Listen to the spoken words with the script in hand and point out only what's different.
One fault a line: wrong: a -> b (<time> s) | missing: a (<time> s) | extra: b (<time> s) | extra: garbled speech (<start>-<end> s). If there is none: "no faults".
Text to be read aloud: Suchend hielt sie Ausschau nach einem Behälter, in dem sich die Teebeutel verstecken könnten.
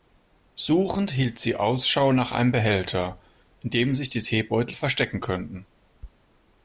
no faults